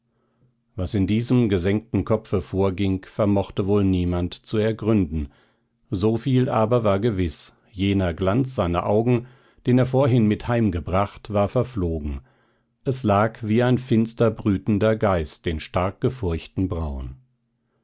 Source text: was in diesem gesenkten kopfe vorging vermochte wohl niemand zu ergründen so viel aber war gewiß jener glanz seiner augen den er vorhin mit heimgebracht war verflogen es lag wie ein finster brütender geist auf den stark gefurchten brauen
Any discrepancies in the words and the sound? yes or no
yes